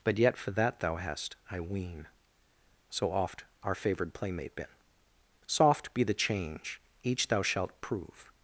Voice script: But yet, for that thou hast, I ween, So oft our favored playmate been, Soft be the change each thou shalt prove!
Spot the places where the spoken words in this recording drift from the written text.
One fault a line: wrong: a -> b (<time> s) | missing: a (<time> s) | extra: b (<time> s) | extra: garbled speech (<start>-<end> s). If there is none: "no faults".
no faults